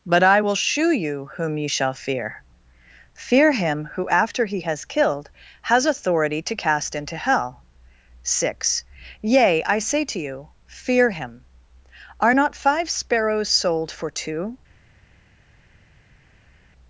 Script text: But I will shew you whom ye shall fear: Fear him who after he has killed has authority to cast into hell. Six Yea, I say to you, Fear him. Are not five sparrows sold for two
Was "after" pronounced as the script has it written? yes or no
yes